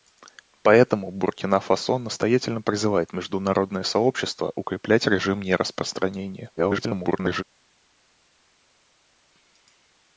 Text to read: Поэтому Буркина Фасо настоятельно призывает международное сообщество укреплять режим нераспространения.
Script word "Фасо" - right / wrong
right